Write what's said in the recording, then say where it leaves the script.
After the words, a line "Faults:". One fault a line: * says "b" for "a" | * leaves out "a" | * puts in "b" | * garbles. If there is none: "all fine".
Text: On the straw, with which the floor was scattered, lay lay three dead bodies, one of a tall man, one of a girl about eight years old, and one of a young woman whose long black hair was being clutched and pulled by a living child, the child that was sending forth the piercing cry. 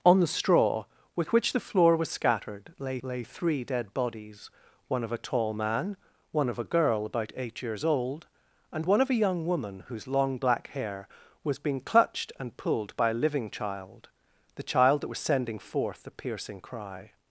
On the straw, with which the floor was scattered, lay lay three dead bodies, one of a tall man, one of a girl about eight years old, and one of a young woman whose long black hair was being clutched and pulled by a living child, the child that was sending forth the piercing cry.
Faults:
all fine